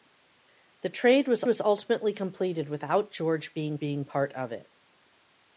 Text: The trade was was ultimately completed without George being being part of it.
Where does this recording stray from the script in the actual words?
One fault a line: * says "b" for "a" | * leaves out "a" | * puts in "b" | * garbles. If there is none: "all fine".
all fine